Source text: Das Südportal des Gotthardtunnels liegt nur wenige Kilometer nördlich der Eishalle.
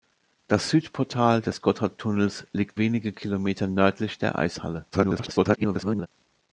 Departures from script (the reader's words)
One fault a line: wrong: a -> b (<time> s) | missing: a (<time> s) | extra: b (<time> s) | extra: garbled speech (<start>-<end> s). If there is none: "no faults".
missing: nur (2.8 s)
extra: garbled speech (4.9-6.1 s)